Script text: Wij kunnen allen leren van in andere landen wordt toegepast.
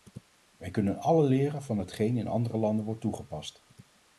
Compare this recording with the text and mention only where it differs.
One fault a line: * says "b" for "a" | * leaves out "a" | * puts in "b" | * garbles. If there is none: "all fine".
* puts in "hetgeen"